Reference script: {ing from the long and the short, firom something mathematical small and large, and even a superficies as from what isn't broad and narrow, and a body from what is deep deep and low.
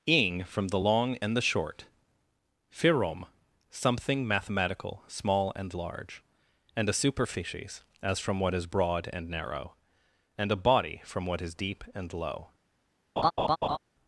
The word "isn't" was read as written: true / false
false